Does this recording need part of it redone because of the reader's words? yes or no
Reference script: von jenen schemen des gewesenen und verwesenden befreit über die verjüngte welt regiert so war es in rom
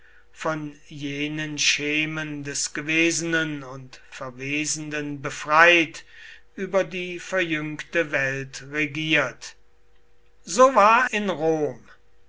yes